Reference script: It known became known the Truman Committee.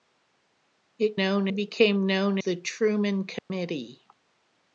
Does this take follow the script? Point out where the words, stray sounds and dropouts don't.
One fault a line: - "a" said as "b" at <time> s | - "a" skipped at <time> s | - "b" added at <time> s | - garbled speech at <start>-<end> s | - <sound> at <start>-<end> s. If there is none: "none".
- dropout at 3.4-3.5 s